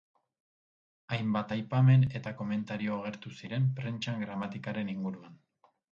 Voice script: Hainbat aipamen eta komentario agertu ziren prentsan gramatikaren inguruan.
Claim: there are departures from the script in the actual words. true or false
false